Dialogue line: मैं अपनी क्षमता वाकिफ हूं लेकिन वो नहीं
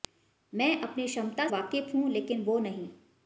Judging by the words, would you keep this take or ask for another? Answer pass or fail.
pass